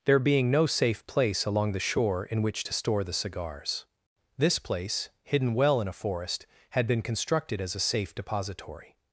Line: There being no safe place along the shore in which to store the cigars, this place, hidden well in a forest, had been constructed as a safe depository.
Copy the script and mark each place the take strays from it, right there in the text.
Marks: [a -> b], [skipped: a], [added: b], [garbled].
There being no safe place along the shore in which to store the cigars, this place, hidden well in a forest, had been constructed as a safe depository.